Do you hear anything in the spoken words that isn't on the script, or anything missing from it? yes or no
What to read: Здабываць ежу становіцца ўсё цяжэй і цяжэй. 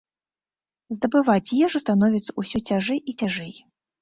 no